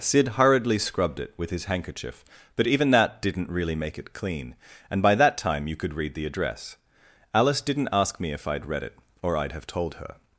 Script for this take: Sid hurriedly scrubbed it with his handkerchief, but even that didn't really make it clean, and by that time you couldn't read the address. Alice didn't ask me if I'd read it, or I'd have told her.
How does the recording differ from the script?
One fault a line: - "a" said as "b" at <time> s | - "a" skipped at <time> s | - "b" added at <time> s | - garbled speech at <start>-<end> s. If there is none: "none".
- "couldn't" said as "could" at 5.8 s